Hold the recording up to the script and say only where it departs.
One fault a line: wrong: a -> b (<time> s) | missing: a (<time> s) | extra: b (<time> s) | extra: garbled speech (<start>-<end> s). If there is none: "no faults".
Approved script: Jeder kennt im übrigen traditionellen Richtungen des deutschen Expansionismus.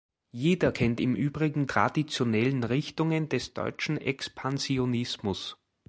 no faults